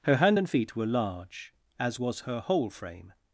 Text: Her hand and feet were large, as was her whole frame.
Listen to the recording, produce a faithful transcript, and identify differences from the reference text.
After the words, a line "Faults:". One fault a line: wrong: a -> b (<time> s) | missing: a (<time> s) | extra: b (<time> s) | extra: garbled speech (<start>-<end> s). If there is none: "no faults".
Her hand and feet were large, as was her whole frame.
Faults:
no faults